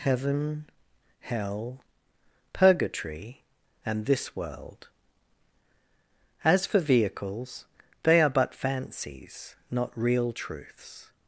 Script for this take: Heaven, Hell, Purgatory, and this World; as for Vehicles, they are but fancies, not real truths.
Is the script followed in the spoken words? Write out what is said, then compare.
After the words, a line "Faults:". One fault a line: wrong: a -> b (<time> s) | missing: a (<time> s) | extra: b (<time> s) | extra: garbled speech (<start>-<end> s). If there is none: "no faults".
Heaven, Hell, Purgatory, and this World; as for Vehicles, they are but fancies, not real truths.
Faults:
no faults